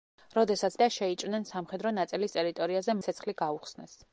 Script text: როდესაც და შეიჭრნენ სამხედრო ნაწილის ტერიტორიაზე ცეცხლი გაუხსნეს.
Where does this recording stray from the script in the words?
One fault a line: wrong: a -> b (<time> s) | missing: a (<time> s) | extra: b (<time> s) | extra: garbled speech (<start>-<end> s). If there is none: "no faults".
no faults